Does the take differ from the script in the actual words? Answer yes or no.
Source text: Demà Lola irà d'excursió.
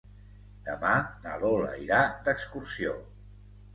yes